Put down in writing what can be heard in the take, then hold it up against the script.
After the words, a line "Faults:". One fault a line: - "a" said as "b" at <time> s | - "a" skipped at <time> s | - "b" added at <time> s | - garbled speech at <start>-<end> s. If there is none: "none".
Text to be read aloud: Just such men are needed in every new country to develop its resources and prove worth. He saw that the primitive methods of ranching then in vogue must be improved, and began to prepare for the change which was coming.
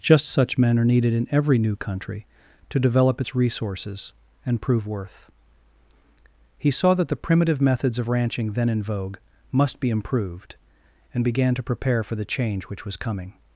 Just such men are needed in every new country to develop its resources and prove worth. He saw that the primitive methods of ranching then in vogue must be improved, and began to prepare for the change which was coming.
Faults:
none